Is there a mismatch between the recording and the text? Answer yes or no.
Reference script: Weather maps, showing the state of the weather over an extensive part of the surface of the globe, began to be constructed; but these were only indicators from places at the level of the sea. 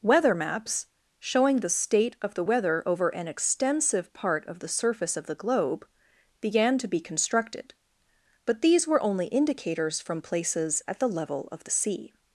no